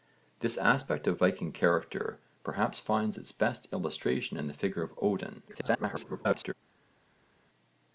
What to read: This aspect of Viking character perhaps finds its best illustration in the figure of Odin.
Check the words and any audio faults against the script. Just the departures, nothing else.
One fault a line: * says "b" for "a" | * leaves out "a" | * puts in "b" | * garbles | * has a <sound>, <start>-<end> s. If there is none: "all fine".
* garbles